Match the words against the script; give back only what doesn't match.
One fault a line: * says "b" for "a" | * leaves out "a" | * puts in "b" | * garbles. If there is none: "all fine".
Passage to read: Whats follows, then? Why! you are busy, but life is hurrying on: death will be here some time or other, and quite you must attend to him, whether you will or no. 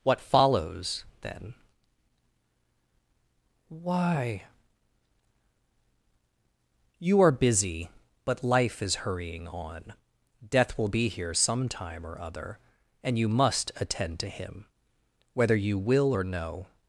* says "What" for "Whats"
* leaves out "quite"